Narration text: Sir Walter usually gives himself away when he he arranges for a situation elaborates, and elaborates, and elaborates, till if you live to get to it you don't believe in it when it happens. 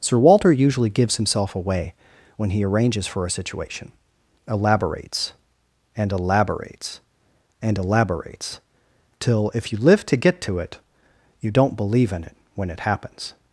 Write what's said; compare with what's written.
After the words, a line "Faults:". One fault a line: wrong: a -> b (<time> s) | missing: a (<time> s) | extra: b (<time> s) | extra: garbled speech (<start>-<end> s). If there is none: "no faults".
Sir Walter usually gives himself away when he arranges for a situation elaborates, and elaborates, and elaborates, till if you live to get to it you don't believe in it when it happens.
Faults:
missing: he (2.6 s)